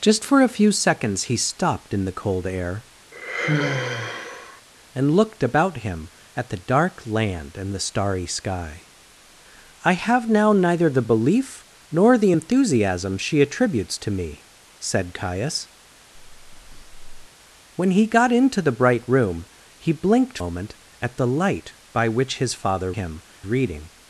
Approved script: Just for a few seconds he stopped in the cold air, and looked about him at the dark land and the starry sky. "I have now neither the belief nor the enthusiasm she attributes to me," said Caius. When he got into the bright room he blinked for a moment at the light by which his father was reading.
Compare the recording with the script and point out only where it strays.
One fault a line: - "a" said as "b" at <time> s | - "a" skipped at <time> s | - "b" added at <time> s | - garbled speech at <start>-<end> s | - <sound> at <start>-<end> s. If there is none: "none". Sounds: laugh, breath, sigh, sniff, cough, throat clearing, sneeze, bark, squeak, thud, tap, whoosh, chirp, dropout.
- sigh at 3.1-4.6 s
- breath at 16.1-17.3 s
- "for a" skipped at 20.4 s
- "was" said as "him" at 22.9 s